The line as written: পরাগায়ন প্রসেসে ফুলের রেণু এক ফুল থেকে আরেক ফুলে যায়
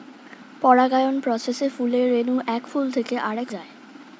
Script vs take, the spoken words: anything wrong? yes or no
yes